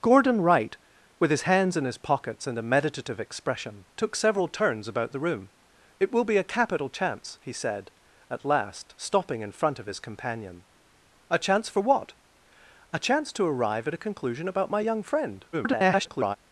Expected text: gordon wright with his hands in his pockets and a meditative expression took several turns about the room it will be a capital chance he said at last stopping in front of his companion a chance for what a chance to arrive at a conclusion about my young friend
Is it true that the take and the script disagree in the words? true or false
true